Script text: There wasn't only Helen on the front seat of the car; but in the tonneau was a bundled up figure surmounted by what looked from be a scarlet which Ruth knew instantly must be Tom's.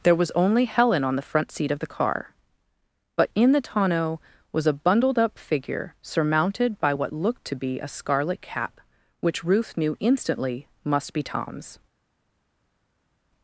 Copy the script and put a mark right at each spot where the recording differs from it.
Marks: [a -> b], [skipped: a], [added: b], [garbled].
There [wasn't -> was] only Helen on the front seat of the car; but in the tonneau was a bundled up figure surmounted by what looked [from -> to] be a scarlet [added: cap] which Ruth knew instantly must be Tom's.